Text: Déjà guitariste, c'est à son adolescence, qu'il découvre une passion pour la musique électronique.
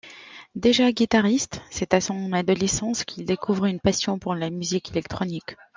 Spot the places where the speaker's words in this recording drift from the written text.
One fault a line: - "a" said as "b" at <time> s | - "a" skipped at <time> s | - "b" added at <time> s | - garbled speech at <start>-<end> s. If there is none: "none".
none